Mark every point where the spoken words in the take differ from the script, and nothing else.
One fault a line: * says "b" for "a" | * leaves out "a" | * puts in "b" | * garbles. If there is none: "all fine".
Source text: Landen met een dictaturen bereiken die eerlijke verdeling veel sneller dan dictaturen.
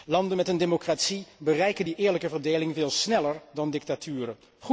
* says "democratie" for "dictaturen"